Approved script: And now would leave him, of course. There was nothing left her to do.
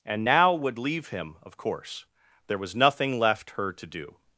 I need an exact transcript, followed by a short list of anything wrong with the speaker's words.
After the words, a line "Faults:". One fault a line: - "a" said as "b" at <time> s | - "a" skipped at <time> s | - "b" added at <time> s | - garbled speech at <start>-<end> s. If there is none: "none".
And now would leave him, of course. There was nothing left her to do.
Faults:
none